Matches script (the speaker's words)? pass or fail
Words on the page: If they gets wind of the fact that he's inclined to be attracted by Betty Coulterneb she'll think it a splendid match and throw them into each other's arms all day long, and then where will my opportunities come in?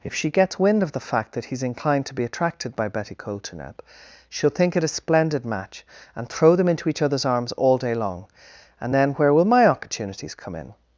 fail